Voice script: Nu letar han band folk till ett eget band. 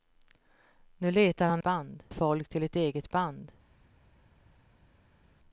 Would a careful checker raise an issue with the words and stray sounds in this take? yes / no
no